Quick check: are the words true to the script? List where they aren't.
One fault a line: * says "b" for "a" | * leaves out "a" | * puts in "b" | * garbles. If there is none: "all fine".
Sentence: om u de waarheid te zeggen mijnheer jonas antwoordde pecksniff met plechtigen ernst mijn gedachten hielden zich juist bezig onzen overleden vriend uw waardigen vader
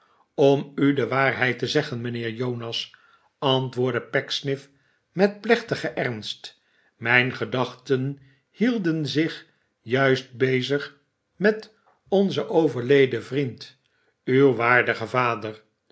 * puts in "met"